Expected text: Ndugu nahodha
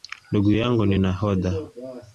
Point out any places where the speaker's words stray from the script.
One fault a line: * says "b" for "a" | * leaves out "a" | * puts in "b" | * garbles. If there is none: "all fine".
* puts in "yangu ni"